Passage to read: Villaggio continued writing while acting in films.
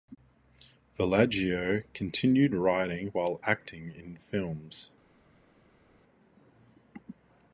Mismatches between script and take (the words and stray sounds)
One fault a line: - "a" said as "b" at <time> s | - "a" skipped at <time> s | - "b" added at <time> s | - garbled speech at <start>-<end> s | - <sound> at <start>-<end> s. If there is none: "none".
none